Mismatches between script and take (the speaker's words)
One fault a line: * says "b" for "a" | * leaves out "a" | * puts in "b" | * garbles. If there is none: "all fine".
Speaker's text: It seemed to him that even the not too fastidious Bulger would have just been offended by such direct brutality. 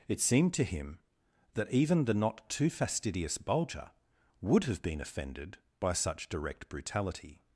* leaves out "just"